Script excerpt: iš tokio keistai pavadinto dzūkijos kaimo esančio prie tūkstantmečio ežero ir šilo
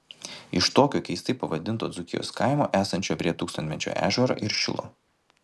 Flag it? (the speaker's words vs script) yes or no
no